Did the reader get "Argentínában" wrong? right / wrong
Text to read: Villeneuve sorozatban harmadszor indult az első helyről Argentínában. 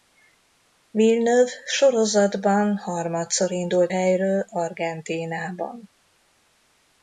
right